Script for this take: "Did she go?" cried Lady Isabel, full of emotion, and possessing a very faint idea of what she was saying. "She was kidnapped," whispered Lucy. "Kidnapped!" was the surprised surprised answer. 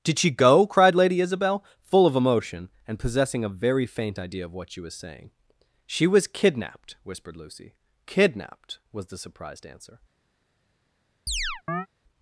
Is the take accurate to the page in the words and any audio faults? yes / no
no